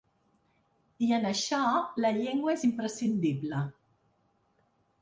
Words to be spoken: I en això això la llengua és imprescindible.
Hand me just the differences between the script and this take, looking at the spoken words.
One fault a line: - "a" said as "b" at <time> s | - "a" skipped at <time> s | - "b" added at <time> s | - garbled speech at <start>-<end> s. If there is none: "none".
- "això" skipped at 1.6 s